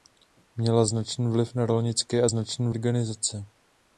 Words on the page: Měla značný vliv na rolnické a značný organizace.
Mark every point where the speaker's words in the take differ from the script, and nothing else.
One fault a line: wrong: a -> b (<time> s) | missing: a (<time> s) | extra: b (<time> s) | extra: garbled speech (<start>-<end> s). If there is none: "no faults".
no faults